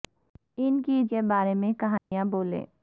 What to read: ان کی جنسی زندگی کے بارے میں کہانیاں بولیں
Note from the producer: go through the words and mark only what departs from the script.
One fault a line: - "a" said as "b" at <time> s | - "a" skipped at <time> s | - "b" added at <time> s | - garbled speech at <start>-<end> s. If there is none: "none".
- "جنسی زندگی" skipped at 1.0 s